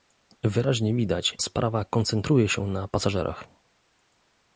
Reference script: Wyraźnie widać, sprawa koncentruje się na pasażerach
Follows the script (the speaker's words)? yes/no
yes